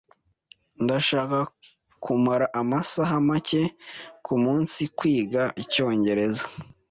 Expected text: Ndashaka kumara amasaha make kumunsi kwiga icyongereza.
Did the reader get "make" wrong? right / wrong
right